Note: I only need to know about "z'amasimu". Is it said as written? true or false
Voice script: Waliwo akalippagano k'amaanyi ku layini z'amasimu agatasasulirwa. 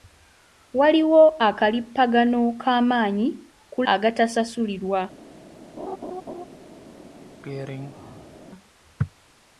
false